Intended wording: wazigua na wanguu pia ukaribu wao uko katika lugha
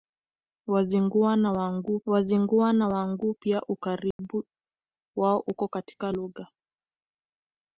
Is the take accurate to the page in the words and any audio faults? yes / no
no